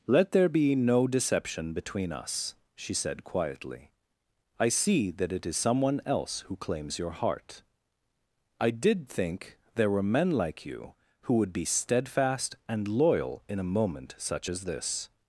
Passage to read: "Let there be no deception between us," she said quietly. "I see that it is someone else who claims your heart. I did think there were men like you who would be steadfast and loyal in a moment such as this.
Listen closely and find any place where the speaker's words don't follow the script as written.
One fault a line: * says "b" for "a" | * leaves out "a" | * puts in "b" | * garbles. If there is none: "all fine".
all fine